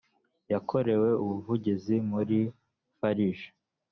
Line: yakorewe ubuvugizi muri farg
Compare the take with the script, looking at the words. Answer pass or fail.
pass